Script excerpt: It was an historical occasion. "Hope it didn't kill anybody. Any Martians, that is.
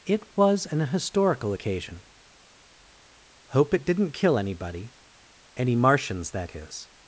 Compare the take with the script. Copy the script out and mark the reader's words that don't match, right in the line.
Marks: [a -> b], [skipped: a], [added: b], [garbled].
It was an historical occasion. "Hope it didn't kill anybody. Any Martians, that is.